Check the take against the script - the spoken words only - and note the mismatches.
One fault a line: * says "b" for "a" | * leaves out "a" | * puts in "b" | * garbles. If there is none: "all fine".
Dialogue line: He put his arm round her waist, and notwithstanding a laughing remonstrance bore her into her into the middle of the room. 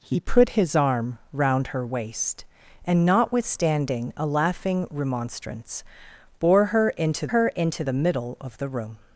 all fine